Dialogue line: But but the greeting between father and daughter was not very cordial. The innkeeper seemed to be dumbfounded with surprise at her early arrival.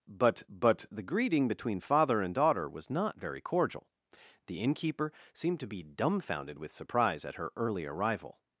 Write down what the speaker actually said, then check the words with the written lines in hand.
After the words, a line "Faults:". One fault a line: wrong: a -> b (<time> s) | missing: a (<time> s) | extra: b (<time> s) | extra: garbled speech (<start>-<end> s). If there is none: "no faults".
But but the greeting between father and daughter was not very cordial. The innkeeper seemed to be dumbfounded with surprise at her early arrival.
Faults:
no faults